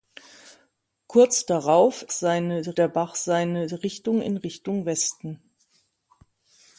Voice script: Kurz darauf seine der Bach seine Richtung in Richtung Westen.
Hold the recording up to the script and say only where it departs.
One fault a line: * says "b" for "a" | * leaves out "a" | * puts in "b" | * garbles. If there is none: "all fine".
all fine